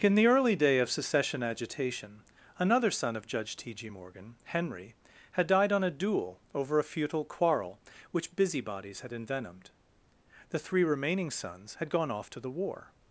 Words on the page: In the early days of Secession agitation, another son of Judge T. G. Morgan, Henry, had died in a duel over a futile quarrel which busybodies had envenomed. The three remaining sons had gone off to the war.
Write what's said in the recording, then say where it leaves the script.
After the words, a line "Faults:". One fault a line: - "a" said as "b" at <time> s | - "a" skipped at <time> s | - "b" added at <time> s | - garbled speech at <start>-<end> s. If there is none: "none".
In the early day of Secession agitation, another son of Judge T. G. Morgan, Henry, had died on a duel over a futile quarrel which busybodies had envenomed. The three remaining sons had gone off to the war.
Faults:
- "days" said as "day" at 0.6 s
- "in" said as "on" at 5.7 s